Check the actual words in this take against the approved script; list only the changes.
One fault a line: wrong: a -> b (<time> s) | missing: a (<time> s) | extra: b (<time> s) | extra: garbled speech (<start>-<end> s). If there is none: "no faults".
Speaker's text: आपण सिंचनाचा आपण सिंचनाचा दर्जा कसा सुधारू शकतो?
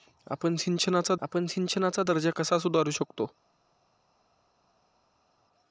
no faults